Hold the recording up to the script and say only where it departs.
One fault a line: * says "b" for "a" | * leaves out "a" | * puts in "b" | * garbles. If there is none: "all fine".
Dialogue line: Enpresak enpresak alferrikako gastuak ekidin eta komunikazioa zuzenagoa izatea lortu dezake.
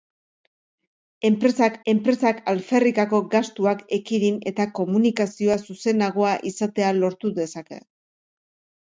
all fine